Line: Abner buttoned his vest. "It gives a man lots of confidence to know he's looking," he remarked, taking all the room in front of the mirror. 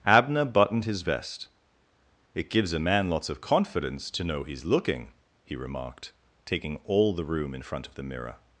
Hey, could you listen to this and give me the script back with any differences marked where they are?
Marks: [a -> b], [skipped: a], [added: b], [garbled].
Abner buttoned his vest. "It gives a man lots of confidence to know he's looking," he remarked, taking all the room in front of the mirror.